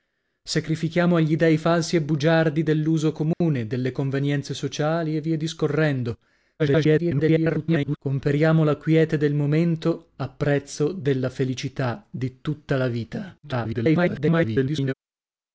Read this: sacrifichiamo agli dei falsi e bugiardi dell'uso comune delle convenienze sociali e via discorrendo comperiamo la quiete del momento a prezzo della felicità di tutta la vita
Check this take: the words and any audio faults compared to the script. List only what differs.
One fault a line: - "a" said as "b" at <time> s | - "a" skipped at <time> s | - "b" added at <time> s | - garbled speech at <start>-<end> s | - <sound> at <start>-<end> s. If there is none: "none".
- dropout at 3.3-3.4 s
- garbled speech at 6.6-8.0 s
- garbled speech at 13.4-14.9 s